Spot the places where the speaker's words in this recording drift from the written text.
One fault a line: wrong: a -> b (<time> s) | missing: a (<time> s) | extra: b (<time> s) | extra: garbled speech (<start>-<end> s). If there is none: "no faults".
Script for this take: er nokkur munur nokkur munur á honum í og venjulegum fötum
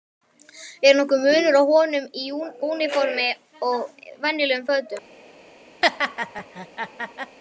missing: nokkur munur (1.6 s)
extra: úniformi (2.7 s)